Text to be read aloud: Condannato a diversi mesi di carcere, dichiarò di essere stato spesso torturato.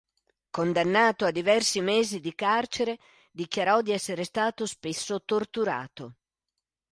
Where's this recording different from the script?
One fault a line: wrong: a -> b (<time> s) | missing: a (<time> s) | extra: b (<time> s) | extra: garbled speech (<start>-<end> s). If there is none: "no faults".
no faults